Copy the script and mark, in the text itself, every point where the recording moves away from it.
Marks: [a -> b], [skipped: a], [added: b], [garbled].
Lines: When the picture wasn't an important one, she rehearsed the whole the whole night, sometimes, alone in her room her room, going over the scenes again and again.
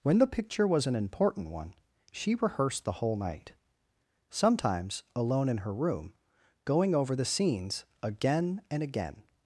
When the picture [wasn't -> was] an important one, she rehearsed the whole [skipped: the whole] night, sometimes, alone in her room [skipped: her room,] going over the scenes again and again.